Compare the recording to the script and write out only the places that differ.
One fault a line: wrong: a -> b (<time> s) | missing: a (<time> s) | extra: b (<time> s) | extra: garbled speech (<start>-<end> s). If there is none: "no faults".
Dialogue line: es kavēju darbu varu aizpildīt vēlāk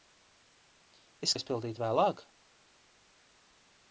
missing: kavēju darbu varu (1.4 s)